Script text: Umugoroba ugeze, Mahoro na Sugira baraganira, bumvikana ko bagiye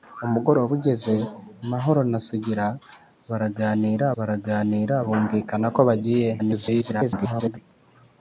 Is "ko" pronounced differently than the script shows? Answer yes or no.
no